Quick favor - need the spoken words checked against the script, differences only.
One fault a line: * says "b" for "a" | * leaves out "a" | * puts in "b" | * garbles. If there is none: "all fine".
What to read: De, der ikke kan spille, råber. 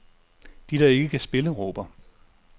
all fine